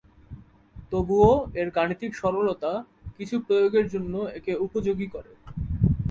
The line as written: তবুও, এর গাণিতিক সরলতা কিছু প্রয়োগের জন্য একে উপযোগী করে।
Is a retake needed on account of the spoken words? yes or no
no